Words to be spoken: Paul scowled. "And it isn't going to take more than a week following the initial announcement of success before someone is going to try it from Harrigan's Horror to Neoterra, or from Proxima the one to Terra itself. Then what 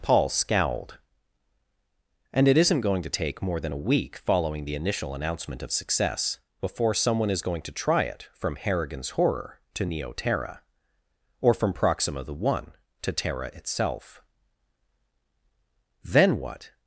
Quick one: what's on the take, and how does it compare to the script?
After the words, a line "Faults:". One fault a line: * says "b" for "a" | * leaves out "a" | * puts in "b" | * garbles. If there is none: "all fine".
Paul scowled. "And it isn't going to take more than a week following the initial announcement of success before someone is going to try it from Harrigan's Horror to Neoterra, or from Proxima the one to Terra itself. Then what
Faults:
all fine